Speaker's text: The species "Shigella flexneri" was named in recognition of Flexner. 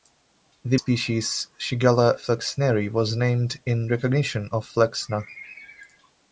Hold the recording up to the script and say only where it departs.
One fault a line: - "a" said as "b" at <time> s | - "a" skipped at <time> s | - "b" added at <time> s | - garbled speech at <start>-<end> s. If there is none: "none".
none